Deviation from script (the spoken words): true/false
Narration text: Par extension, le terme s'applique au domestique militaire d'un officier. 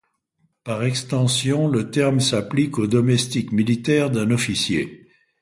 false